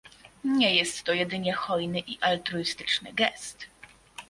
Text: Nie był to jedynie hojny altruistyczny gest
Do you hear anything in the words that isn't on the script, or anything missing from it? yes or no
yes